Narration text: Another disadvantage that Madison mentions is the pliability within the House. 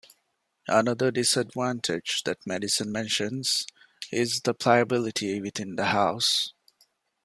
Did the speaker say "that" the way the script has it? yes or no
yes